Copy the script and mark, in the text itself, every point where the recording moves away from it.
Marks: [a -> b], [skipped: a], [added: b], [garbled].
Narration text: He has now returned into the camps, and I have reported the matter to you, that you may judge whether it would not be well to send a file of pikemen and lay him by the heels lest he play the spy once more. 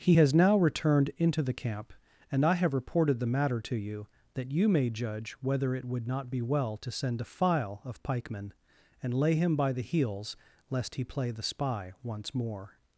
He has now returned into the [camps, -> camp] and I have reported the matter to you, that you may judge whether it would not be well to send a file of pikemen and lay him by the heels lest he play the spy once more.